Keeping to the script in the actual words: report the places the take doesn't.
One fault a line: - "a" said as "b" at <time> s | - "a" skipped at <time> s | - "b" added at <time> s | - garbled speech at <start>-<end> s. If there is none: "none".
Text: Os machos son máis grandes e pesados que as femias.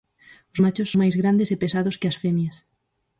- "son" skipped at 0.9 s